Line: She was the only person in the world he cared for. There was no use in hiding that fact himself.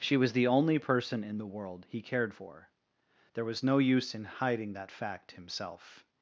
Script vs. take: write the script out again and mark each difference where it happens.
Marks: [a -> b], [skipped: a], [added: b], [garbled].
She was the only person in the world he cared for. There was no use in hiding that fact himself.